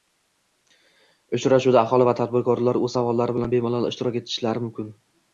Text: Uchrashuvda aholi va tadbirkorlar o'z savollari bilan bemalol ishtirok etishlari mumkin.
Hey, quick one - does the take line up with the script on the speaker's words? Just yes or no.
yes